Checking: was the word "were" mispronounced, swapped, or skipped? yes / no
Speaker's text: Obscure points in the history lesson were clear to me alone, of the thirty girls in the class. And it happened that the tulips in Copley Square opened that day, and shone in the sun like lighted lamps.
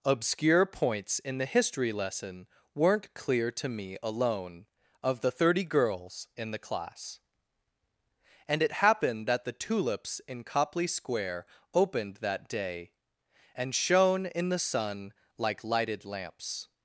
yes